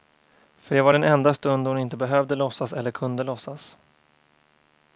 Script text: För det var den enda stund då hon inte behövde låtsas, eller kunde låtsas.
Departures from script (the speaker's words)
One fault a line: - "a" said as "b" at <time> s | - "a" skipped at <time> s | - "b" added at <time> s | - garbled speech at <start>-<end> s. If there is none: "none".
none